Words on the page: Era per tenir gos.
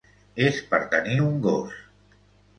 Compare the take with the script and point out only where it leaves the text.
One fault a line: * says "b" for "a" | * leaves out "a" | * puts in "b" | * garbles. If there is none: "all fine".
* says "És" for "Era"
* puts in "un"